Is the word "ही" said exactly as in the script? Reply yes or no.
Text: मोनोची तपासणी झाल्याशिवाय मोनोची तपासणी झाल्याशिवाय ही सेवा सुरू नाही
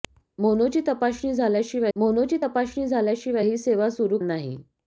yes